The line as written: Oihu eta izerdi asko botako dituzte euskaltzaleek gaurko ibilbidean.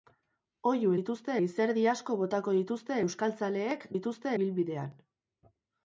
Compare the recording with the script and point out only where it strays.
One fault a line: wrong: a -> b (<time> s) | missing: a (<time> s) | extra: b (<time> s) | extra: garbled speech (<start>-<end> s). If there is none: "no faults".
wrong: eta -> dituzte (1.0 s)
wrong: gaurko -> dituzte (3.9 s)